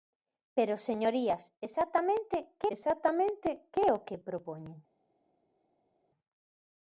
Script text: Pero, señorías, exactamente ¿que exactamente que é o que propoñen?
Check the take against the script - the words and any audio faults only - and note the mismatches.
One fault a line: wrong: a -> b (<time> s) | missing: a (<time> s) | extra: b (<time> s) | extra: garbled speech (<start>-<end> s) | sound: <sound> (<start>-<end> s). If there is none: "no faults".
no faults